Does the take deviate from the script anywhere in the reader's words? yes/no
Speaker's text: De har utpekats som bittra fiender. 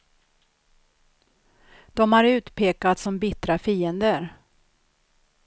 no